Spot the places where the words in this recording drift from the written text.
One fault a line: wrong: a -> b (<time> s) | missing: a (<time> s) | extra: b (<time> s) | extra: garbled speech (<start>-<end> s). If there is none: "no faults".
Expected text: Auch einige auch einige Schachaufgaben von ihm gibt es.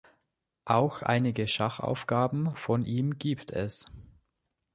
missing: auch einige (1.5 s)